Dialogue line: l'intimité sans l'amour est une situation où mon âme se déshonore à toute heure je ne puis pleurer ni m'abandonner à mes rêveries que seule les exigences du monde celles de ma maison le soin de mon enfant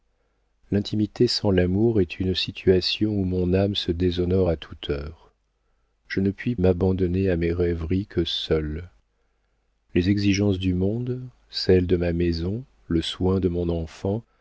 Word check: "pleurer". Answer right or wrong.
wrong